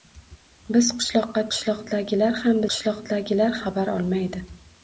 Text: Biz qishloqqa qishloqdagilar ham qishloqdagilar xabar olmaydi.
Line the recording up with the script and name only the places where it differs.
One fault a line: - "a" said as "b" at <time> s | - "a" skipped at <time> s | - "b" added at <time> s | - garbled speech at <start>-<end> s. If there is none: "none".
none